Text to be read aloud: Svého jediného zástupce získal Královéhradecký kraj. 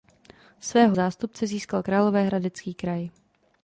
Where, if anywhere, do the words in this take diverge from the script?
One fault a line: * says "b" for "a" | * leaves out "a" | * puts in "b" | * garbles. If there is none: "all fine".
* leaves out "jediného"